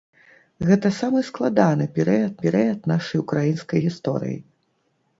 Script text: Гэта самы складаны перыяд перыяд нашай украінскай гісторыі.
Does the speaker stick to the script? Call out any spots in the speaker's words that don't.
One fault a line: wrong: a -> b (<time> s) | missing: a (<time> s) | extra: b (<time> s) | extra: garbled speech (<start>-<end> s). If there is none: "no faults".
no faults